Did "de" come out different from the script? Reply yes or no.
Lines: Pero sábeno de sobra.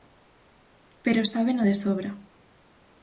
no